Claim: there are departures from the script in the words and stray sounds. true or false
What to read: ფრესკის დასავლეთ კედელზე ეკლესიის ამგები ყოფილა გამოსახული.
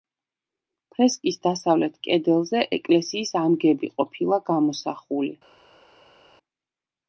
false